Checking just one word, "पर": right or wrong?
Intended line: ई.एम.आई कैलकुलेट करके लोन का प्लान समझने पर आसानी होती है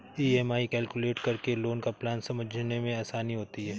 wrong